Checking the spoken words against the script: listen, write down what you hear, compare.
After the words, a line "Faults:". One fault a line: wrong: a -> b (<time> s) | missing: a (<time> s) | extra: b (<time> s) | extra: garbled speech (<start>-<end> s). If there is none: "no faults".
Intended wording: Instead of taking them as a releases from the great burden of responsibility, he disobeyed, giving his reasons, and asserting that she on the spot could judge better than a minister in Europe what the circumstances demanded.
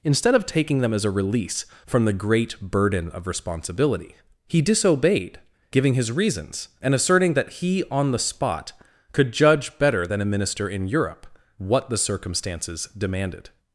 Instead of taking them as a release from the great burden of responsibility, he disobeyed, giving his reasons, and asserting that he on the spot could judge better than a minister in Europe what the circumstances demanded.
Faults:
wrong: releases -> release (1.1 s)
wrong: she -> he (7.5 s)